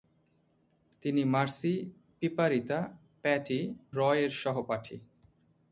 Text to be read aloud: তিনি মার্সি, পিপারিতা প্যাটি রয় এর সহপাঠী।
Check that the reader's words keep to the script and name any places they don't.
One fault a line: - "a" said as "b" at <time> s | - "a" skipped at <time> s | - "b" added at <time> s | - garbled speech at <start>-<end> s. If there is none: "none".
none